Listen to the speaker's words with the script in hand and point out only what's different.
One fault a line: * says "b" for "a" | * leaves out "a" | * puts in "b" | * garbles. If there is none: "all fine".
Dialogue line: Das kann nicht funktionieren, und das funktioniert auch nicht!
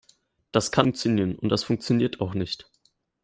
* leaves out "nicht"